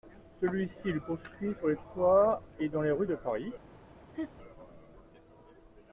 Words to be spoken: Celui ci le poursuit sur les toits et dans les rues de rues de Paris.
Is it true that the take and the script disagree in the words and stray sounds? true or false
true